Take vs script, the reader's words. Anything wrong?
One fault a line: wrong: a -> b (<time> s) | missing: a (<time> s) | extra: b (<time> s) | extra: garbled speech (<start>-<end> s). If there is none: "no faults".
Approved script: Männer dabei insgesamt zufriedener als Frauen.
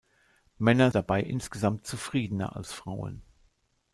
no faults